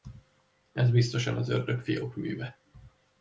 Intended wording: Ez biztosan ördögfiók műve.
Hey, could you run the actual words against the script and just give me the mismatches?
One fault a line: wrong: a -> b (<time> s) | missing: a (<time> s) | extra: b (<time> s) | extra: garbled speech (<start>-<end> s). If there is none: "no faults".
extra: az (1.4 s)